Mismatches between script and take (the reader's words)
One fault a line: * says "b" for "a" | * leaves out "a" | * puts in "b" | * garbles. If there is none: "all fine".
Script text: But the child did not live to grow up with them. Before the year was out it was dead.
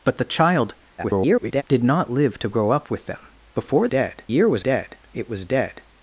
* garbles
* says "dead" for "the"
* says "dead" for "out"